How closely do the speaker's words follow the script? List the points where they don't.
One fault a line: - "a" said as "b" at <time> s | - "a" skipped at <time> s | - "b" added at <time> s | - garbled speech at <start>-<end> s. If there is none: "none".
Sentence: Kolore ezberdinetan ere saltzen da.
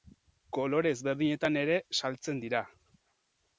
- "da" said as "dira" at 2.5 s